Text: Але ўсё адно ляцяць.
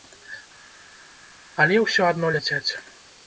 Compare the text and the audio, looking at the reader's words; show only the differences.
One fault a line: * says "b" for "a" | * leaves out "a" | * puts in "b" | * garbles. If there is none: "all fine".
all fine